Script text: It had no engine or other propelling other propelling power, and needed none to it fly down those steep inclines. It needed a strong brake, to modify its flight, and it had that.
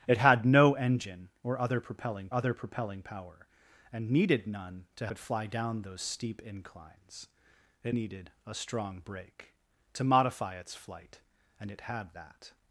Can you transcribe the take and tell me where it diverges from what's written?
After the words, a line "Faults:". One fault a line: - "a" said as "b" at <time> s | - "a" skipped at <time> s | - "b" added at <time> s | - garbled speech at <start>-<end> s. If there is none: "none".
It had no engine or other propelling other propelling power, and needed none to it fly down those steep inclines. It needed a strong brake, to modify its flight, and it had that.
Faults:
none